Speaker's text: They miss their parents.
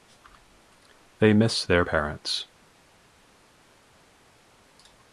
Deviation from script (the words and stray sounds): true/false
false